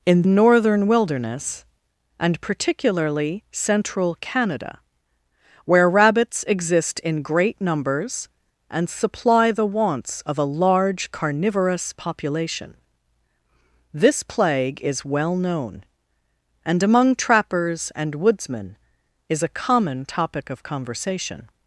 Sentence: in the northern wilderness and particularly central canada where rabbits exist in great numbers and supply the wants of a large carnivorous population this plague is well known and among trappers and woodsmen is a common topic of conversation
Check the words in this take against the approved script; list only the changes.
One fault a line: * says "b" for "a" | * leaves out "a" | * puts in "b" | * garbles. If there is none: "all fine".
* leaves out "the"